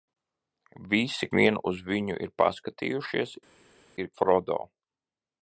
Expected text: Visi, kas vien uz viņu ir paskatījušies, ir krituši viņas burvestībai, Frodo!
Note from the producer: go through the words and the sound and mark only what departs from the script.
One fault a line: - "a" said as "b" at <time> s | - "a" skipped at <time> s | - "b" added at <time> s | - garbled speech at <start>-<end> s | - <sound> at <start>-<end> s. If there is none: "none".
- "kas" skipped at 1.3 s
- "krituši viņas burvestībai" skipped at 4.1 s